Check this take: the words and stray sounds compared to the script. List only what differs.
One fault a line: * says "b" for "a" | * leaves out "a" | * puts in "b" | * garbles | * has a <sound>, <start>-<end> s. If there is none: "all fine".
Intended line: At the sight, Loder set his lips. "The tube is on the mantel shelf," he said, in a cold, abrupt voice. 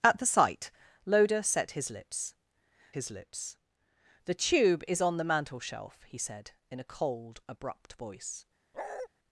* puts in "his lips"
* has a bark, 8.7-9.1 s